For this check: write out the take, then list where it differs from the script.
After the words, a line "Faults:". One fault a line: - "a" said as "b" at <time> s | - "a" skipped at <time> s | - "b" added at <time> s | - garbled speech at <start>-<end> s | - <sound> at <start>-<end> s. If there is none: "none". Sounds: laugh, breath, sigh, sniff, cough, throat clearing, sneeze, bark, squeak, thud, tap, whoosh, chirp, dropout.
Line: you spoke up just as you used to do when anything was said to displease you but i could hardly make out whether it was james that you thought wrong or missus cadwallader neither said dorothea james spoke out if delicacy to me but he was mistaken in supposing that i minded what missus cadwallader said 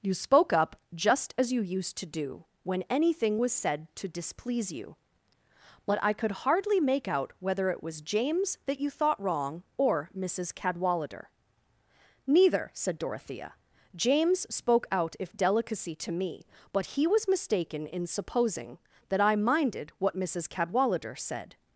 you spoke up just as you used to do when anything was said to displease you but i could hardly make out whether it was james that you thought wrong or missus cadwallader neither said dorothea james spoke out if delicacy to me but he was mistaken in supposing that i minded what missus cadwallader said
Faults:
none